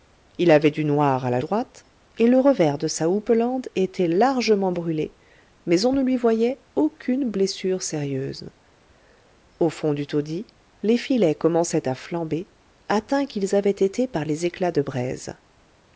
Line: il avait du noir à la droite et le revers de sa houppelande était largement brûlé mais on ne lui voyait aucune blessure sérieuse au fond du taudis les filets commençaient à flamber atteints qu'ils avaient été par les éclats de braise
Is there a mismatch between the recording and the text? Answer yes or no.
no